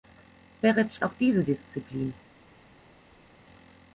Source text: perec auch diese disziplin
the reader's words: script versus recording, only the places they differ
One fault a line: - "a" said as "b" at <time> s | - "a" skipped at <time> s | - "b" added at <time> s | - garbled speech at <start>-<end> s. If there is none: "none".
none